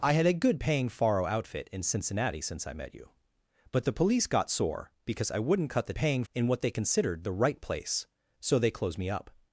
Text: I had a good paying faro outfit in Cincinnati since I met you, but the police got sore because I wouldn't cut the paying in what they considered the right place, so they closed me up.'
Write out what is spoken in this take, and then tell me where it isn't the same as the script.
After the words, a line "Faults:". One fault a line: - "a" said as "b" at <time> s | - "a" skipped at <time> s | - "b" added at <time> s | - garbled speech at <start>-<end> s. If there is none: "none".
I had a good paying faro outfit in Cincinnati since I met you, but the police got sore because I wouldn't cut the paying in what they considered the right place, so they closed me up.'
Faults:
none